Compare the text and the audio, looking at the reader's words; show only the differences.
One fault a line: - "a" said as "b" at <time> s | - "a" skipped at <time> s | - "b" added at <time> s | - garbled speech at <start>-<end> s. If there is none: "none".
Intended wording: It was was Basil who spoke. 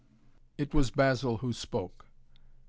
- "was" skipped at 0.9 s